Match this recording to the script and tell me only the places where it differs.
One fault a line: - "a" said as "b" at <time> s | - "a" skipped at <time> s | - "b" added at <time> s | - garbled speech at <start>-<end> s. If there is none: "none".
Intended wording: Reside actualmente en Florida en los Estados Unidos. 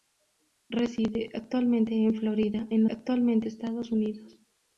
- "los" said as "actualmente" at 2.9 s